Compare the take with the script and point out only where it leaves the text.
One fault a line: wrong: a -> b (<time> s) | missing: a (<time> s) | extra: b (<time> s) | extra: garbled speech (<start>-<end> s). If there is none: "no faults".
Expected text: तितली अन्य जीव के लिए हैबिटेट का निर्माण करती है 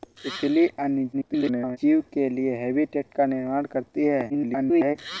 extra: garbled speech (1.1-1.8 s)
extra: garbled speech (4.3-5.0 s)